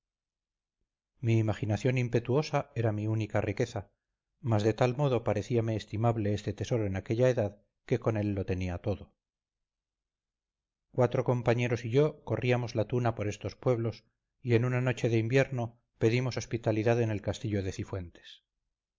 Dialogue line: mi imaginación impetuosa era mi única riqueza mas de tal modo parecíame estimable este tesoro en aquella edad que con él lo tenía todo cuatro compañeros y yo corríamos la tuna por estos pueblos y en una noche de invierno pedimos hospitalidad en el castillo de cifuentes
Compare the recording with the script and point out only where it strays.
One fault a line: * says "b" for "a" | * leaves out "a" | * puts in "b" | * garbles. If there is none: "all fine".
all fine